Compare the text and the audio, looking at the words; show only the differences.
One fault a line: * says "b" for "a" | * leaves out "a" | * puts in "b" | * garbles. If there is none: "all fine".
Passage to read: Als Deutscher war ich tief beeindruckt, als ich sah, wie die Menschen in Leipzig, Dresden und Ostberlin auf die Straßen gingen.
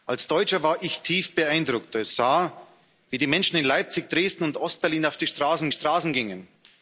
* leaves out "ich"
* puts in "Straßen"